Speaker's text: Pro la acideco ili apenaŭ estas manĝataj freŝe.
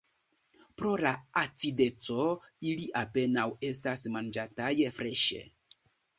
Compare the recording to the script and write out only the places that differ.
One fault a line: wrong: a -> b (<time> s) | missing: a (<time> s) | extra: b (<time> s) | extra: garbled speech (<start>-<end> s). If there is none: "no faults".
no faults